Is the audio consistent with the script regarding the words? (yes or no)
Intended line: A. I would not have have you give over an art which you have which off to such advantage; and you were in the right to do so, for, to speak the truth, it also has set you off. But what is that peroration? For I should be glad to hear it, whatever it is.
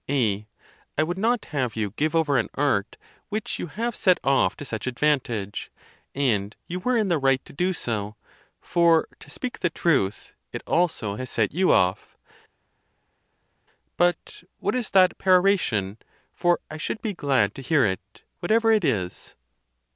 no